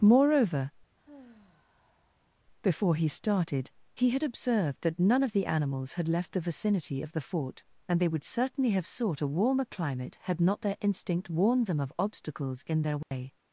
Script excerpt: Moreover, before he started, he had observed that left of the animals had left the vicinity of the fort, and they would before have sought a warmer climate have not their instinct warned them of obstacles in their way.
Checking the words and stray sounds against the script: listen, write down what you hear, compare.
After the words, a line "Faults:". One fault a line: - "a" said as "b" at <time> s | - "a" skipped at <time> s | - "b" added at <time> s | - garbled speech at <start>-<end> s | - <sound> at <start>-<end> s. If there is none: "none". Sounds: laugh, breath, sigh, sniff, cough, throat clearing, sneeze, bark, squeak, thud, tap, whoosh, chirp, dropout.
Moreover, before he started, he had observed that none of the animals had left the vicinity of the fort, and they would certainly have sought a warmer climate had not their instinct warned them of obstacles in their way.
Faults:
- sigh at 1.0-2.4 s
- "left" said as "none" at 5.0 s
- "before" said as "certainly" at 8.3 s
- "have" said as "had" at 10.2 s
- dropout at 13.0-13.1 s